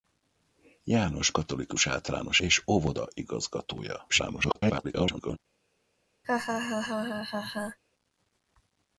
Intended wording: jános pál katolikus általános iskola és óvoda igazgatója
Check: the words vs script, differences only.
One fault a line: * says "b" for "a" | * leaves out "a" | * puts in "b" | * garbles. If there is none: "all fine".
* leaves out "pál"
* leaves out "iskola"
* garbles